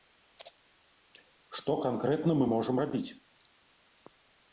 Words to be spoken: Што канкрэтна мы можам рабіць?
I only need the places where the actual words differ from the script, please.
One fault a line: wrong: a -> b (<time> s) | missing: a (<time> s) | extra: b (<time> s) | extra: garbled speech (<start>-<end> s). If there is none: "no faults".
no faults